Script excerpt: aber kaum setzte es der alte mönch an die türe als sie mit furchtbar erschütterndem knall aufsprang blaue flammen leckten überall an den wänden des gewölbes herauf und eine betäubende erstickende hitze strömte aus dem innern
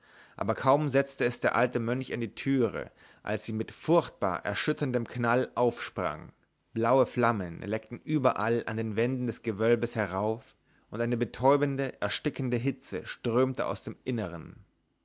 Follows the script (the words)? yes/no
yes